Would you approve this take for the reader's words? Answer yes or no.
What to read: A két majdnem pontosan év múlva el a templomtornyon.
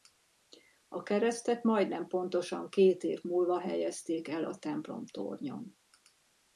no